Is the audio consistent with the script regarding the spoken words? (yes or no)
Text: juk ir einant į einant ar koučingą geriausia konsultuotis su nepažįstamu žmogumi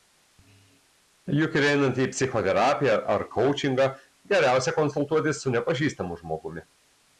no